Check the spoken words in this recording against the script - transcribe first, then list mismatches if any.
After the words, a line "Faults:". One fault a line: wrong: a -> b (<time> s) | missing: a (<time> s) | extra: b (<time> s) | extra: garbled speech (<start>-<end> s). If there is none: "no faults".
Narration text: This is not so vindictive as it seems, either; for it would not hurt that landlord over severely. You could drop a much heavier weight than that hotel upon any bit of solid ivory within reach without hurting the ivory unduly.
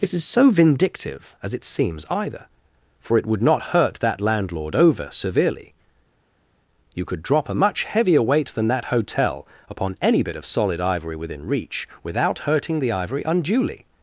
This is so vindictive as it seems, either; for it would not hurt that landlord over severely. You could drop a much heavier weight than that hotel upon any bit of solid ivory within reach without hurting the ivory unduly.
Faults:
missing: not (0.2 s)